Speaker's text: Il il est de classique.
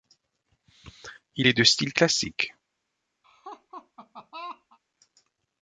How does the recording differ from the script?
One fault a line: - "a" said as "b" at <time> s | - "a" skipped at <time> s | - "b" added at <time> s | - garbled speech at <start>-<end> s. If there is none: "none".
- "il" skipped at 1.5 s
- "style" added at 1.6 s